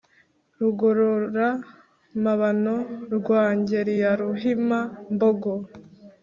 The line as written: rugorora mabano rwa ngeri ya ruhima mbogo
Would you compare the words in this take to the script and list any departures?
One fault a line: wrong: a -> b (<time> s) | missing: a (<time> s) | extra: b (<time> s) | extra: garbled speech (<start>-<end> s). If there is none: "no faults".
no faults